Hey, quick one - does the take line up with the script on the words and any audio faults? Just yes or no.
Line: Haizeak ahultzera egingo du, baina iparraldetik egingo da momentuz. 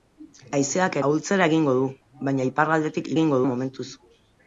yes